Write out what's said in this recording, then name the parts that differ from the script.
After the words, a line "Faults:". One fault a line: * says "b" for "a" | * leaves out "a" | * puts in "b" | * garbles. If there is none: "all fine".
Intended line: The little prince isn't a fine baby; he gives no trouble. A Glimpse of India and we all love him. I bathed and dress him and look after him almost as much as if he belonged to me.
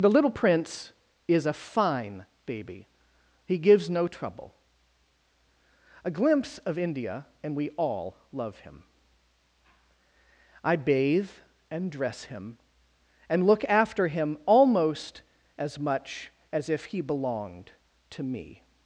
The little prince is a fine baby; he gives no trouble. A Glimpse of India and we all love him. I bathe and dress him and look after him almost as much as if he belonged to me.
Faults:
* says "is" for "isn't"
* says "bathe" for "bathed"